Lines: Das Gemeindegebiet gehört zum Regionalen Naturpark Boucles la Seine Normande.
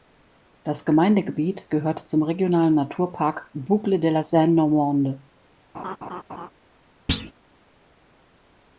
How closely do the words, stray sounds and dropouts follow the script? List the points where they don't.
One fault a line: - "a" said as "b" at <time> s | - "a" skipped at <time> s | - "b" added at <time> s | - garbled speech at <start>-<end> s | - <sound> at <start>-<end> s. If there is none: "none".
- "de" added at 4.0 s
- laugh at 5.7-6.5 s
- thud at 7.1-7.3 s